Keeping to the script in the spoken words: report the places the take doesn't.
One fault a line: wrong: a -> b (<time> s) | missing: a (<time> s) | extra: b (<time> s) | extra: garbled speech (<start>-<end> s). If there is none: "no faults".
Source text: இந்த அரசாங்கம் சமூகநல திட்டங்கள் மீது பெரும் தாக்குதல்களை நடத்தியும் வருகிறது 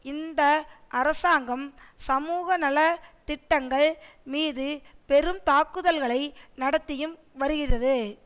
no faults